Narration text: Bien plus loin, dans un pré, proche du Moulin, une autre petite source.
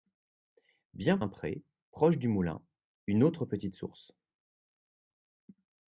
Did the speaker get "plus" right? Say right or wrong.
wrong